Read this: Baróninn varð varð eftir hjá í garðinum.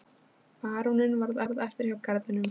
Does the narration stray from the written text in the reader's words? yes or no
no